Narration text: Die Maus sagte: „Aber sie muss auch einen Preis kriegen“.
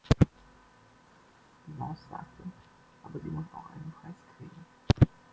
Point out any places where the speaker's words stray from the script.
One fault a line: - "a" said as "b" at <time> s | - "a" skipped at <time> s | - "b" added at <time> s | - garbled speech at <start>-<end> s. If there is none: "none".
none